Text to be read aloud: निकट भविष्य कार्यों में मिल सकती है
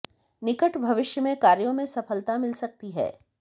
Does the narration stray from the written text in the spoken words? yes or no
yes